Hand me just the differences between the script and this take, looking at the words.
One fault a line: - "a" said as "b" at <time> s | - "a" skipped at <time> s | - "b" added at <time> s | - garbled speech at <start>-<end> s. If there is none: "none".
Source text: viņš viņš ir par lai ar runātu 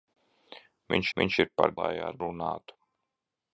none